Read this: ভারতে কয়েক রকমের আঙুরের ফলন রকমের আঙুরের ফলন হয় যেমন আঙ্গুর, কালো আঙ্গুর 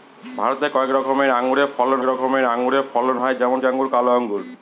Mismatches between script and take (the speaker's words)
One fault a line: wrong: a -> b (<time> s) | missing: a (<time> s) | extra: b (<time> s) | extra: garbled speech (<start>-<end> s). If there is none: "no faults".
no faults